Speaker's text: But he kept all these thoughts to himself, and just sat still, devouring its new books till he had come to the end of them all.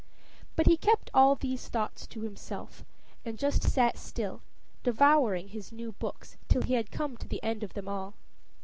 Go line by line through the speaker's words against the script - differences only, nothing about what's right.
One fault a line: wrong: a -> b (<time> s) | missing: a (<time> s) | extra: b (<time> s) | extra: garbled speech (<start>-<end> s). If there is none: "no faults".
wrong: its -> his (5.5 s)